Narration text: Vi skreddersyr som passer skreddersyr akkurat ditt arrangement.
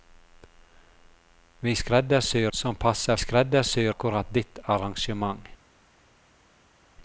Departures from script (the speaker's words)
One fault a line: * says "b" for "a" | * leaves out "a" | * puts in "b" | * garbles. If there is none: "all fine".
all fine